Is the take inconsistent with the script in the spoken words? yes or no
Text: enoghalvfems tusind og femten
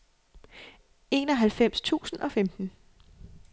no